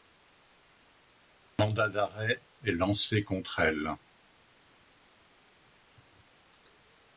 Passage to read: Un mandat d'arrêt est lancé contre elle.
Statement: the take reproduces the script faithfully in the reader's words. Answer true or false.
true